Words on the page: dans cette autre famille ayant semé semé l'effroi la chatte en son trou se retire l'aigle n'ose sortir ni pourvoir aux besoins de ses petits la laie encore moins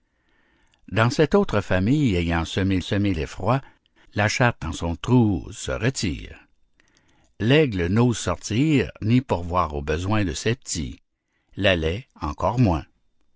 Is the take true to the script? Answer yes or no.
yes